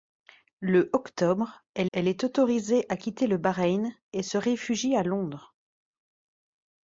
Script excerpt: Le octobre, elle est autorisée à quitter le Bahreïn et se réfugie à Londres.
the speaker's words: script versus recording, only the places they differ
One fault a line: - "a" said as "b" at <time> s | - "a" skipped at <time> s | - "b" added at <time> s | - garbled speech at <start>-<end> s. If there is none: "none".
- "elle" added at 1.9 s